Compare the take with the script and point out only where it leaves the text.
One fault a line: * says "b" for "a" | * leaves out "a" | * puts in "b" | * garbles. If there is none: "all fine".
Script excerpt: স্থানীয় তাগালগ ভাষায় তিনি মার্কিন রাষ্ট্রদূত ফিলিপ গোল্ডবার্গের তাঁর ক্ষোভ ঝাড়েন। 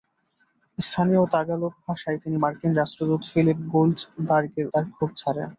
all fine